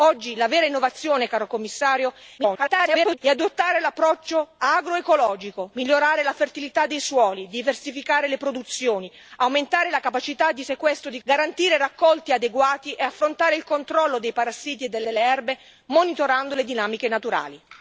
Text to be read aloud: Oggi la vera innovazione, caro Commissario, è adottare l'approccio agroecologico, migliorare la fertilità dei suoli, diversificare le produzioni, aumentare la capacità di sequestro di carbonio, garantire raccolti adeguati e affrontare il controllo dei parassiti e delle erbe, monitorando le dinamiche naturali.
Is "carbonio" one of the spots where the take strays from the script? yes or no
yes